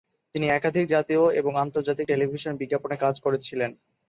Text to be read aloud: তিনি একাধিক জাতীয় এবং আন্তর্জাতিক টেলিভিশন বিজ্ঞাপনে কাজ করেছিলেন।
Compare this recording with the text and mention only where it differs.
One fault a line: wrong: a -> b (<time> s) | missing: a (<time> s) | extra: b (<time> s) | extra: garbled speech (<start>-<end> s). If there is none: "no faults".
no faults